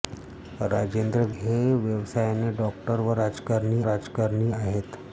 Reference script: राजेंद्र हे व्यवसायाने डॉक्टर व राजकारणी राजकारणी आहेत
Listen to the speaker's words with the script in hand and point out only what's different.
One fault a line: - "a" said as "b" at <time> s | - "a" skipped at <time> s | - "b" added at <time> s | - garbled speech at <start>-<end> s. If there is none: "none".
none